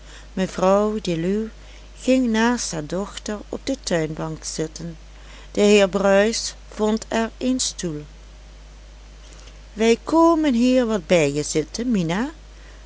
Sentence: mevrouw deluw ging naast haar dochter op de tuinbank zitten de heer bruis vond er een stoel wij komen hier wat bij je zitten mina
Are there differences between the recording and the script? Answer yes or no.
no